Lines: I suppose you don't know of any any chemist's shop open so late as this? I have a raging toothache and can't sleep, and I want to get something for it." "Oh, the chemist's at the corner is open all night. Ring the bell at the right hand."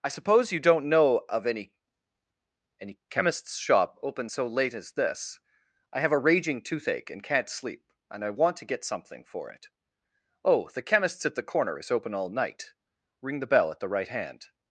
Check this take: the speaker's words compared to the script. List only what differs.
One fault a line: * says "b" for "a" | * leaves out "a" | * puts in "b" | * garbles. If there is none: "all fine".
all fine